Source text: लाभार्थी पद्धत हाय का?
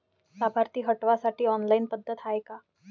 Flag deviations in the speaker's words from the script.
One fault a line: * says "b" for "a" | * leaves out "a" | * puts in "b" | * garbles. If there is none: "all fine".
* puts in "हटवासाठी ऑनलाईन"